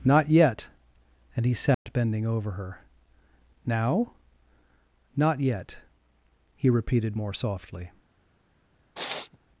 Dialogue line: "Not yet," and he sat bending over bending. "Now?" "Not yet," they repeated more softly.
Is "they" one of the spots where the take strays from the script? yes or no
yes